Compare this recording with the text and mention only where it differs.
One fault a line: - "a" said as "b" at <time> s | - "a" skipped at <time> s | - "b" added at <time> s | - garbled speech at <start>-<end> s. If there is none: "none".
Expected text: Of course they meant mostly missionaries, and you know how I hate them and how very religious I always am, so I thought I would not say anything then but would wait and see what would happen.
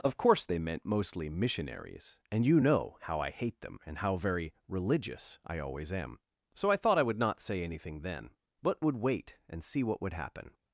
none